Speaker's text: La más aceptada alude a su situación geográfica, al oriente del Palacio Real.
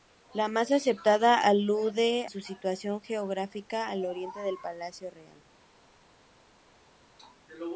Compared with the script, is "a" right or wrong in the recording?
wrong